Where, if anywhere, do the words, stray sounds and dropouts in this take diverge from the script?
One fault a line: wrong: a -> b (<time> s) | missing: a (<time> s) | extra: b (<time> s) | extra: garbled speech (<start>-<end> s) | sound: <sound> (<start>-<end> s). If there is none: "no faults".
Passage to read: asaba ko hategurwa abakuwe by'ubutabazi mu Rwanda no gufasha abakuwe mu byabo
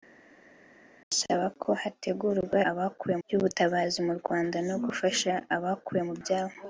no faults